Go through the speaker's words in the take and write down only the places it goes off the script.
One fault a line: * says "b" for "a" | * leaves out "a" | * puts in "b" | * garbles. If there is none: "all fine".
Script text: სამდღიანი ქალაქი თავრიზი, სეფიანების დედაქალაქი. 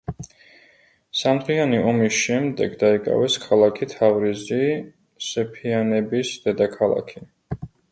* puts in "ომის შემდეგ დაიკავეს"